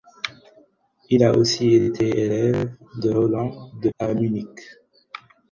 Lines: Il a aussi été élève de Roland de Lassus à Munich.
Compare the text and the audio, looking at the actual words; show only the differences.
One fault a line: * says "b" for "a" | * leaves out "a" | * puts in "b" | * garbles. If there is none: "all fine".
* leaves out "Lassus"